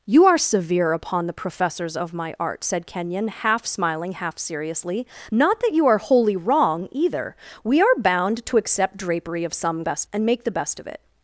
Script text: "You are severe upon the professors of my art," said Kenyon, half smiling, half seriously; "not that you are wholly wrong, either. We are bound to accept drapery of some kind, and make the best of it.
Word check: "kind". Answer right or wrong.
wrong